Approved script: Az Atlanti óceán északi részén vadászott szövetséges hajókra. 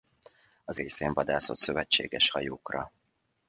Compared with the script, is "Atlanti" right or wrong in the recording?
wrong